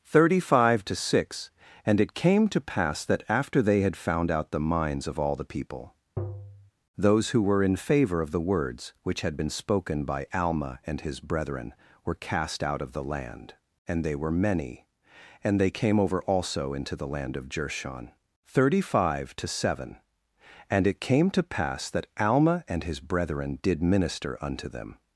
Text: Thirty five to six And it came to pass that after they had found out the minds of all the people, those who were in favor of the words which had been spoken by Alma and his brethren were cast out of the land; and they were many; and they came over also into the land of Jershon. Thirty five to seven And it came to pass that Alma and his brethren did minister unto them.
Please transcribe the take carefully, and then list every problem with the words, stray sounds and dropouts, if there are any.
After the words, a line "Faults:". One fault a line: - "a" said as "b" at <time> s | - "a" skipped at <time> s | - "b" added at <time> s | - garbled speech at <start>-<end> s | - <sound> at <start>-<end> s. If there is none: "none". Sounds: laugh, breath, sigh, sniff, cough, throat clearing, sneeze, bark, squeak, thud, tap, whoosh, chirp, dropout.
Thirty five to six And it came to pass that after they had found out the minds of all the people, those who were in favor of the words which had been spoken by Alma and his brethren were cast out of the land; and they were many; and they came over also into the land of Jershon. Thirty five to seven And it came to pass that Alma and his brethren did minister unto them.
Faults:
- tap at 6.2-6.7 s